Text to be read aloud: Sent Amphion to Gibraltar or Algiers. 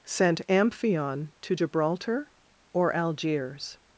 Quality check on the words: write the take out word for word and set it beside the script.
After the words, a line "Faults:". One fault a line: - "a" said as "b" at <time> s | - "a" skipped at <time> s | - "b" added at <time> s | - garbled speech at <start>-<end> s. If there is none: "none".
Sent Amphion to Gibraltar or Algiers.
Faults:
none